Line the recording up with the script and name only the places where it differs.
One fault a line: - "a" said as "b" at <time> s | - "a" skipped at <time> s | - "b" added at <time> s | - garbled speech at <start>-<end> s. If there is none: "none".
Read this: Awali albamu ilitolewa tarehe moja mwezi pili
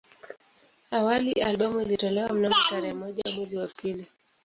- "mnamo" added at 2.3 s
- "wa" added at 3.6 s